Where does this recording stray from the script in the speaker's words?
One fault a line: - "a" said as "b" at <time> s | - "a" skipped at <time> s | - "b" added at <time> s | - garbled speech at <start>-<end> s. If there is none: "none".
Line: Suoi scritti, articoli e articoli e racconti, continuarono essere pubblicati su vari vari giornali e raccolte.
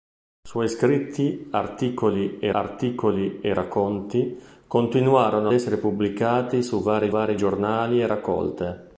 none